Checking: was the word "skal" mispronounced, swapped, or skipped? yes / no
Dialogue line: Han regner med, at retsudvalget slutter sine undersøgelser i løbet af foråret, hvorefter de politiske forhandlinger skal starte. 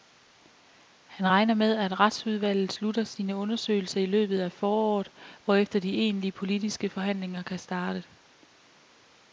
yes